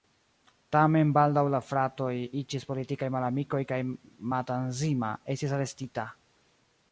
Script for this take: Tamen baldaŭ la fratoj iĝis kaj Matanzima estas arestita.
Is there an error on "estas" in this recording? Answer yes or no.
yes